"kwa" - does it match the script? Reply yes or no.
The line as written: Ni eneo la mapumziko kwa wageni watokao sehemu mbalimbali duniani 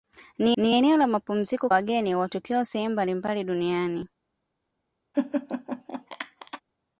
no